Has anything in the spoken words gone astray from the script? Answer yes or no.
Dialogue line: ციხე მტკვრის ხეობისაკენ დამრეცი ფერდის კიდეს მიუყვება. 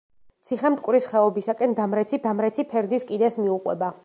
yes